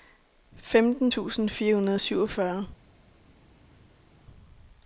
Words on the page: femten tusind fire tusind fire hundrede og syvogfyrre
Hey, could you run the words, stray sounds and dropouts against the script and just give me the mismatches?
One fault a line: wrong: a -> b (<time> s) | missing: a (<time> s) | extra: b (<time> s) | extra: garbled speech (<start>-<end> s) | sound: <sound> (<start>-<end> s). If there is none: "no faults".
missing: tusind fire (1.8 s)